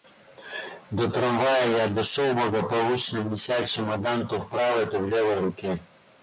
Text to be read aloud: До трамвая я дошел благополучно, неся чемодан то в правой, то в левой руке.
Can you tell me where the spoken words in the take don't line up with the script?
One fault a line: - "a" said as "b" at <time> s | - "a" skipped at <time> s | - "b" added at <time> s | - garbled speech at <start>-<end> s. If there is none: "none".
none